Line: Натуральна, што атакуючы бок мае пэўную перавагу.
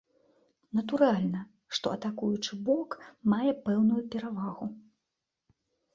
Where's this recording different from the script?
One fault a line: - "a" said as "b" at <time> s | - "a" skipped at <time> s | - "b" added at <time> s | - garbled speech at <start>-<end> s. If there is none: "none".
none